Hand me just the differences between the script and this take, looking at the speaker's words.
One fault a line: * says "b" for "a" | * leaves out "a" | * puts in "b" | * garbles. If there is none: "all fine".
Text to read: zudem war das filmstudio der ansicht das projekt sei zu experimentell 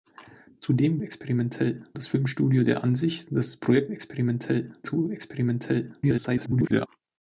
* says "experimentell" for "war"
* says "experimentell" for "sei"
* garbles